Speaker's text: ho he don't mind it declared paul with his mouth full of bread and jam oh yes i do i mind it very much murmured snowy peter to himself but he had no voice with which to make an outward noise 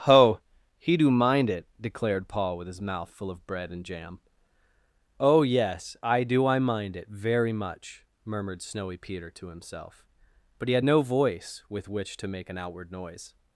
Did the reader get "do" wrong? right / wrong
right